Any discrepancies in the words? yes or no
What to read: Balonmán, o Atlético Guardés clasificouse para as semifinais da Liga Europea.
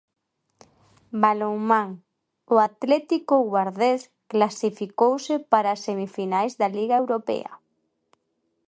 no